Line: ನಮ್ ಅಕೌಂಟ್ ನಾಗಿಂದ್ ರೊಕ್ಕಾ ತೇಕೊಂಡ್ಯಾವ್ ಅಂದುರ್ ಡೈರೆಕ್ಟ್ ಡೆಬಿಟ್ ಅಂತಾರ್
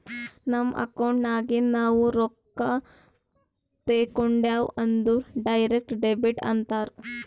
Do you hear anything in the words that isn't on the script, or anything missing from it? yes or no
yes